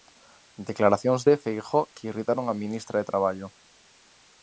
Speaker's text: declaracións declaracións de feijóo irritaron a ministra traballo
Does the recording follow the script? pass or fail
fail